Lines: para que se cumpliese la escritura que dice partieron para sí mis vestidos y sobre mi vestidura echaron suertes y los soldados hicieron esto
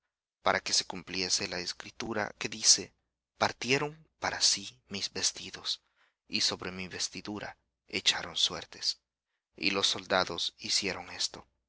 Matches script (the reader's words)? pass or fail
pass